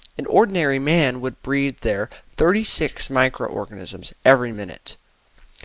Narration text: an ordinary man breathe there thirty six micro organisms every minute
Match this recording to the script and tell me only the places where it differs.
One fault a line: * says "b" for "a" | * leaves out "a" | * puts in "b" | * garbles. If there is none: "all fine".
* puts in "would"